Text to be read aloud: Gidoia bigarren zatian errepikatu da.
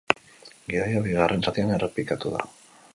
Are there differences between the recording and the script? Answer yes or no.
no